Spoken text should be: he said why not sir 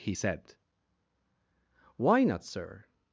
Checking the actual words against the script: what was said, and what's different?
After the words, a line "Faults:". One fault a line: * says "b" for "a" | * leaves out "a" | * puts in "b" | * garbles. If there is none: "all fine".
he said why not sir
Faults:
all fine